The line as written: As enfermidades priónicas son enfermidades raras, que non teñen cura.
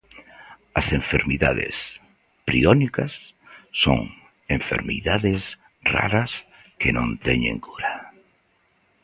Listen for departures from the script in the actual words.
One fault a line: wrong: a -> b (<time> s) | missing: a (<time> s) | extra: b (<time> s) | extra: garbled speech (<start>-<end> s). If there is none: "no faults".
no faults